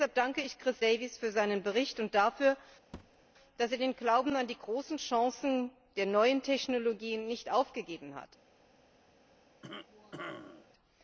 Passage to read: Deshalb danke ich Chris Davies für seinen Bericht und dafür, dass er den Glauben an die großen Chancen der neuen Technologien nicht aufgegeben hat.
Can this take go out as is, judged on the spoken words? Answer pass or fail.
pass